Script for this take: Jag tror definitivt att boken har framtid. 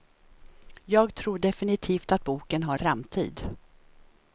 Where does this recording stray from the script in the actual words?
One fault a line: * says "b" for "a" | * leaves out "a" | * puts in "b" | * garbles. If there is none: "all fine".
all fine